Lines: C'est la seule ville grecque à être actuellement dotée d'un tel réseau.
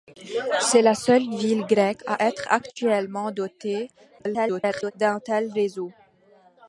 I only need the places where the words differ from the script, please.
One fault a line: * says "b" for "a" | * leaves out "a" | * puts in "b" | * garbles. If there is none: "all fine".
* garbles